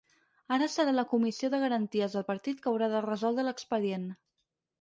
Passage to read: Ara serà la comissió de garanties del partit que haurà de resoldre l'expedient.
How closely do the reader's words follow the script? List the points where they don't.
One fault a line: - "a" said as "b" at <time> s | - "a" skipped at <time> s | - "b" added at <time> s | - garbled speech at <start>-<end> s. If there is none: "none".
none